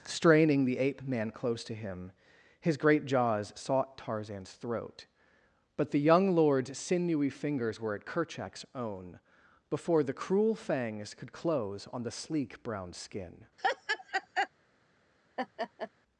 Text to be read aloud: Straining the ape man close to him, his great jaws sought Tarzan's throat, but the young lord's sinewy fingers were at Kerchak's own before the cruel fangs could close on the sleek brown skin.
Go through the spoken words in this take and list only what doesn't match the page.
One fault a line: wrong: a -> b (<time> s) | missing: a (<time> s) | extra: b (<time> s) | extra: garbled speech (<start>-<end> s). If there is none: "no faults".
no faults